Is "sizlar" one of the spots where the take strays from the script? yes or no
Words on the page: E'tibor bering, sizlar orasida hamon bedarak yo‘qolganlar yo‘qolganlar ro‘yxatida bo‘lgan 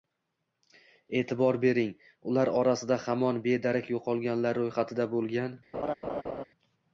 yes